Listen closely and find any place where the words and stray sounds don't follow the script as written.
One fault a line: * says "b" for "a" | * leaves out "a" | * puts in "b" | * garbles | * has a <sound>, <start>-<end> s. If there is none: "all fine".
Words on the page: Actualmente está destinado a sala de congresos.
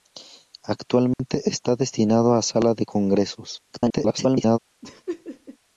* has a dropout, 1.1-1.2 s
* garbles
* has a laugh, 4.8-5.6 s